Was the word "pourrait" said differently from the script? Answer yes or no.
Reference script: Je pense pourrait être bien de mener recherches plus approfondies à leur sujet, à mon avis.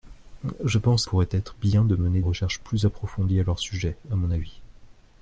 no